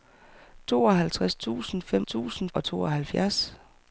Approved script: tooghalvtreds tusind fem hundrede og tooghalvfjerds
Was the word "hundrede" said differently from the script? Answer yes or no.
yes